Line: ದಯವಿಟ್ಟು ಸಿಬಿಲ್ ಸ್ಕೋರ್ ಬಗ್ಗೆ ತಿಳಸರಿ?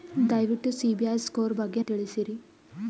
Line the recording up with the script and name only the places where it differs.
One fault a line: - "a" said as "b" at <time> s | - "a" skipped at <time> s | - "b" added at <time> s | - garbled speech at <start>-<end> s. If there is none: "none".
none